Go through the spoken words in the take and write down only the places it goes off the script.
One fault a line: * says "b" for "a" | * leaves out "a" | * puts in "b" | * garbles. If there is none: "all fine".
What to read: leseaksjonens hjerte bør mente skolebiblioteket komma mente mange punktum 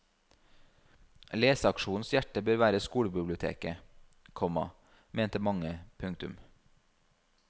* says "være" for "mente"